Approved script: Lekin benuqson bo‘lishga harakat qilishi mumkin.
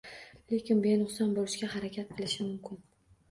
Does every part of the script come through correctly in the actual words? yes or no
yes